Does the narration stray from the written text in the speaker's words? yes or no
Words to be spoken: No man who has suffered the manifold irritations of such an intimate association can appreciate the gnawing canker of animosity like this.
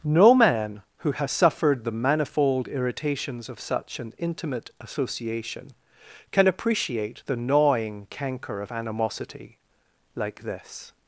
no